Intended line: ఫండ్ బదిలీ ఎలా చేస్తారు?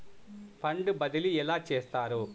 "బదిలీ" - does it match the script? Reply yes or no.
yes